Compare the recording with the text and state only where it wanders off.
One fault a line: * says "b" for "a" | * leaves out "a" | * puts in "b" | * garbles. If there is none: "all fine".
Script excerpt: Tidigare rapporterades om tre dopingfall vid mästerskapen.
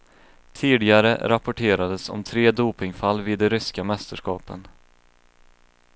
* puts in "de ryska"